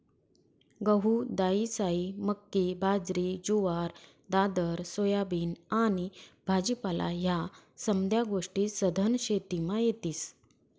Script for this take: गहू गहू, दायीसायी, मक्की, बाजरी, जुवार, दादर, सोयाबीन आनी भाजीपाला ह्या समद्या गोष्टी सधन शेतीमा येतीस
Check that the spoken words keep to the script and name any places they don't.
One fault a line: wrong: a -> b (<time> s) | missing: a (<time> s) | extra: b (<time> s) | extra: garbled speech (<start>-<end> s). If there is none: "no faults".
missing: गहू (1.1 s)